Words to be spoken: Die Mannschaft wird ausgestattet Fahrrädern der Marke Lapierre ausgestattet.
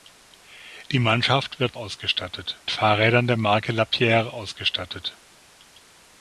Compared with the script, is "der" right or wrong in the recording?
right